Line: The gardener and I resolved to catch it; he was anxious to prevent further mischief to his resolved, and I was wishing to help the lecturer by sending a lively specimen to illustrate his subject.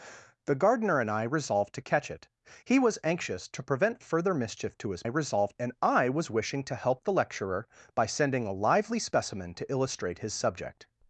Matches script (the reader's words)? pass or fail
pass